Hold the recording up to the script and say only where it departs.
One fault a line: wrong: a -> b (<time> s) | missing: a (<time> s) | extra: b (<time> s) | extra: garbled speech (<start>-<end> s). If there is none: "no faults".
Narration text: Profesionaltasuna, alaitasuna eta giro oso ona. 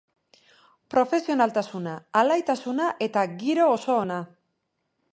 no faults